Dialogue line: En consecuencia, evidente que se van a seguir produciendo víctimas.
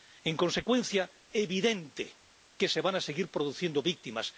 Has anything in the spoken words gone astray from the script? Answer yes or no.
no